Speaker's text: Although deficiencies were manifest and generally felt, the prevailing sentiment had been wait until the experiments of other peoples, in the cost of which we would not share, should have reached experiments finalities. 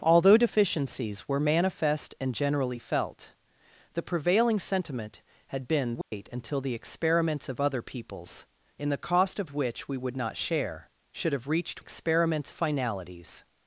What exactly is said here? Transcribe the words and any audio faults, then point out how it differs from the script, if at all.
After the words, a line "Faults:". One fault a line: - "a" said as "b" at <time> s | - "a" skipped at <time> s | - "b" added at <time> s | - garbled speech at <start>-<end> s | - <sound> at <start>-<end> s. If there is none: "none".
Although deficiencies were manifest and generally felt, the prevailing sentiment had been wait until the experiments of other peoples, in the cost of which we would not share, should have reached experiments finalities.
Faults:
- dropout at 6.0-6.1 s